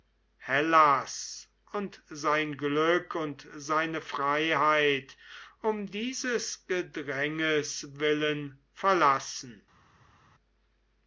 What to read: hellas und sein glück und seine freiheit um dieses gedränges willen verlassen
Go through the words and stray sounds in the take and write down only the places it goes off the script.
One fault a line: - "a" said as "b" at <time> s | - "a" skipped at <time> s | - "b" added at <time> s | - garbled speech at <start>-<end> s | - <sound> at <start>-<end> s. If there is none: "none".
none